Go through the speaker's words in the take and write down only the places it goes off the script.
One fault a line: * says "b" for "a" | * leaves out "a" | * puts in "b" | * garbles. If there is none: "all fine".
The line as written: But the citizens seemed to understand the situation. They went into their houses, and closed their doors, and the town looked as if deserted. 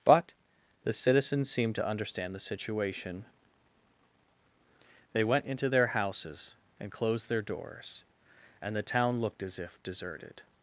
all fine